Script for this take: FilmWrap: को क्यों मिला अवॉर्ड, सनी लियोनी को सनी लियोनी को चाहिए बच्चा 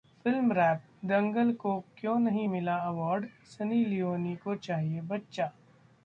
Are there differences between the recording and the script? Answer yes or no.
yes